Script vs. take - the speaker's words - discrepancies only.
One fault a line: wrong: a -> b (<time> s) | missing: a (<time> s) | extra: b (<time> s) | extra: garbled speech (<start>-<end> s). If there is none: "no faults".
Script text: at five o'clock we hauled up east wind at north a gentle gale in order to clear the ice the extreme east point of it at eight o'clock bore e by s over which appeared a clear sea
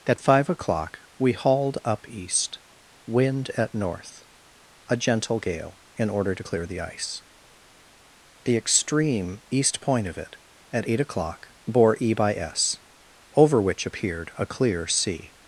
no faults